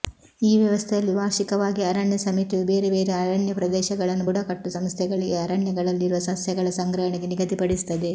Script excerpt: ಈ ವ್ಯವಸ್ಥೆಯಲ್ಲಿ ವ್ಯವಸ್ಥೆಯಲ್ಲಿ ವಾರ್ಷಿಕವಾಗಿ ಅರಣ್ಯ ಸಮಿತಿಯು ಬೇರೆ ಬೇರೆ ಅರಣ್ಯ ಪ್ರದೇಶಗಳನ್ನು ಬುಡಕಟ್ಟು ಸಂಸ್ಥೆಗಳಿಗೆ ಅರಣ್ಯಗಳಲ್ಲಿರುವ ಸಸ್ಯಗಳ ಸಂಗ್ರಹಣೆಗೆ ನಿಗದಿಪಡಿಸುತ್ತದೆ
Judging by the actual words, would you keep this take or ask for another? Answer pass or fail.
fail